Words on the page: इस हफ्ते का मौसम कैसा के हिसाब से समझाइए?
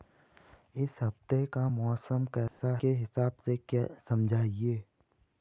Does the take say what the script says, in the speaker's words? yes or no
yes